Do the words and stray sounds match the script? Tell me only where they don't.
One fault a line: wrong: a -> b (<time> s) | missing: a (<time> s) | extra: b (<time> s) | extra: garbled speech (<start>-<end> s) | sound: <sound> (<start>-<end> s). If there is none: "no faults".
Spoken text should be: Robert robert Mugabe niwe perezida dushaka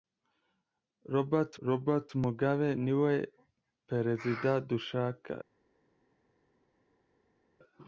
no faults